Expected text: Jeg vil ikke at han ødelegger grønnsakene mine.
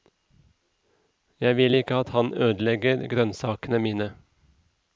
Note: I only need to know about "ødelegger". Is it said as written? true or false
true